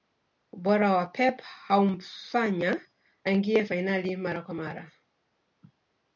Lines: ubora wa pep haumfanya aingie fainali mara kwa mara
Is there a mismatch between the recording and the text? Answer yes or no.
no